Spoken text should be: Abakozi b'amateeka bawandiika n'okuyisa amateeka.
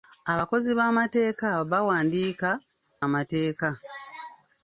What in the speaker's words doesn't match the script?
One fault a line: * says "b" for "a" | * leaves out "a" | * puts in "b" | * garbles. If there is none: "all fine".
* leaves out "n'okuyisa"